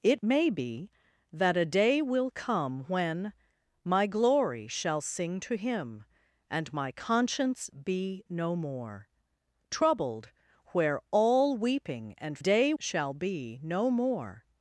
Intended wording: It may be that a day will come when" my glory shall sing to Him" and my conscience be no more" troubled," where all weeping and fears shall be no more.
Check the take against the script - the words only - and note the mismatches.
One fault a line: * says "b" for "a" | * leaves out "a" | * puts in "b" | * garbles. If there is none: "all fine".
* says "day" for "fears"